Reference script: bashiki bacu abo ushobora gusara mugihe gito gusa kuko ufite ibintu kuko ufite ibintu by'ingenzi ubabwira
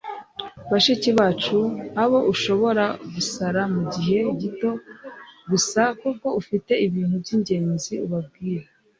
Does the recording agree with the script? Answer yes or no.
no